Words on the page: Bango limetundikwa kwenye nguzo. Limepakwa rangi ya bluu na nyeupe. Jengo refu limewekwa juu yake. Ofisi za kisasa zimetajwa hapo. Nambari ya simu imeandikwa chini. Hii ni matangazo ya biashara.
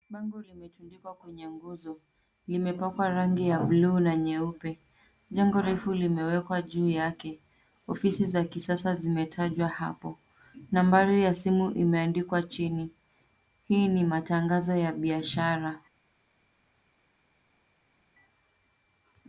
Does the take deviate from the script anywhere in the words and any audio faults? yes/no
no